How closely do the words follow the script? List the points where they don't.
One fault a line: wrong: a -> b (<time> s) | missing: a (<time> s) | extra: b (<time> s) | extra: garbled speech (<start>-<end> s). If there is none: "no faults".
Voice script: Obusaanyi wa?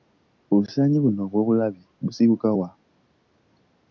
extra: buno obw'obulabe busibuka (1.0 s)